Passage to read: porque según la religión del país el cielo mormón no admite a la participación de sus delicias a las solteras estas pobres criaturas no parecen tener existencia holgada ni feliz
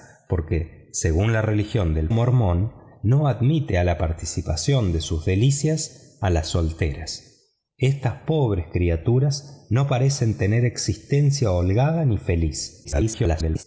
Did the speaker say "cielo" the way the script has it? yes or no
no